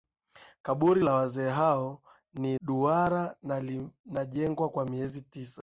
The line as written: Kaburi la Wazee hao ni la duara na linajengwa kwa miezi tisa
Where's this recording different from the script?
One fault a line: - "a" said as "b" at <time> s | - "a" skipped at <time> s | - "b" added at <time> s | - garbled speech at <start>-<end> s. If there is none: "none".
- "la" skipped at 2.6 s